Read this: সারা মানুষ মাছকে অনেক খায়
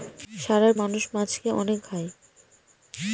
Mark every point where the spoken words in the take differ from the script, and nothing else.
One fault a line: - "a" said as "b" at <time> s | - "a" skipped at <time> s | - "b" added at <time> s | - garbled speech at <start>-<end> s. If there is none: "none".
none